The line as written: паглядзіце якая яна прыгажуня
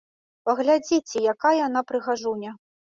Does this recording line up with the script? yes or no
yes